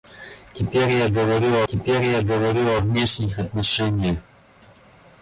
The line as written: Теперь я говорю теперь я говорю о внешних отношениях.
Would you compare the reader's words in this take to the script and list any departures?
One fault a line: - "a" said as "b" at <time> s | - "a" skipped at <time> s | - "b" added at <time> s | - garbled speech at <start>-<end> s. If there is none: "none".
none